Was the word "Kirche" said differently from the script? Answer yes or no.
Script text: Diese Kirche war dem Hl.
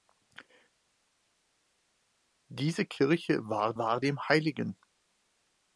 no